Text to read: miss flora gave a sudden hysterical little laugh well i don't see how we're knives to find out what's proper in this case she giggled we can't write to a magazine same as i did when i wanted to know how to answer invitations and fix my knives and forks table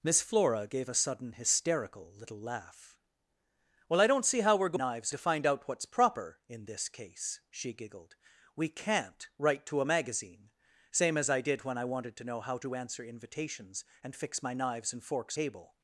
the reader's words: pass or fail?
pass